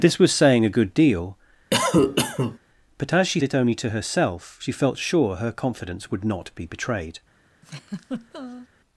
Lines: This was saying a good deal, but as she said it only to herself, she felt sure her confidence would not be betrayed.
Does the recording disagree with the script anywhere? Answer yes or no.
yes